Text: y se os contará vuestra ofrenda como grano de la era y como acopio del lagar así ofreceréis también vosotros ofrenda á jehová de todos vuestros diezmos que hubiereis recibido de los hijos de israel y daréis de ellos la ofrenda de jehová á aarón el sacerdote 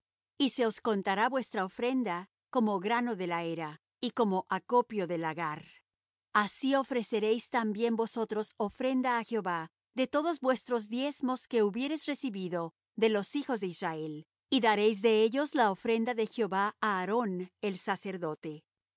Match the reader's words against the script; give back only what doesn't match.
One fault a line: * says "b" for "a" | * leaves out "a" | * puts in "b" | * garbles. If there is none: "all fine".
all fine